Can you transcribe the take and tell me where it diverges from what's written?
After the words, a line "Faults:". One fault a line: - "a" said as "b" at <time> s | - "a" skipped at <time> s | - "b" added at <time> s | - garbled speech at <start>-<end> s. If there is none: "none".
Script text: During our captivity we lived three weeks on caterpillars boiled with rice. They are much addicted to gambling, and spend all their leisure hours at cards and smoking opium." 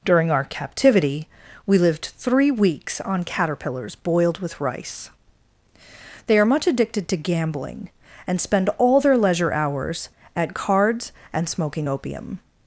During our captivity we lived three weeks on caterpillars boiled with rice. They are much addicted to gambling, and spend all their leisure hours at cards and smoking opium."
Faults:
none